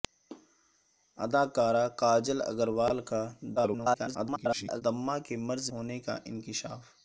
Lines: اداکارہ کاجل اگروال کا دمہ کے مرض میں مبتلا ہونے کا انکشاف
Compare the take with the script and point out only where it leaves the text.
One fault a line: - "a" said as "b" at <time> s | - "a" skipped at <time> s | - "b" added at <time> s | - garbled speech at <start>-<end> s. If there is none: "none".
- garbled speech at 3.6-4.8 s
- "میں مبتلا" skipped at 5.7 s